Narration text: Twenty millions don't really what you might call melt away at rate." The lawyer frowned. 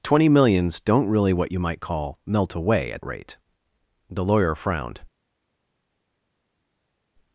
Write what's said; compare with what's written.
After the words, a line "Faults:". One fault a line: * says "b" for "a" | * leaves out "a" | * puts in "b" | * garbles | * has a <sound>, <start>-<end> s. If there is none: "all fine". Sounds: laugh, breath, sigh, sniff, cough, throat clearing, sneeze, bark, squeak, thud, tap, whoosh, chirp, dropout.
Twenty millions don't really what you might call melt away at rate." The lawyer frowned.
Faults:
all fine